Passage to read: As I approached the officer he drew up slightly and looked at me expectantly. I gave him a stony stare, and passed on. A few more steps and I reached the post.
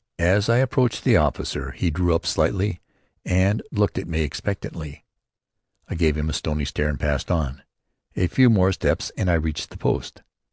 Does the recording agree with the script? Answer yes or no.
yes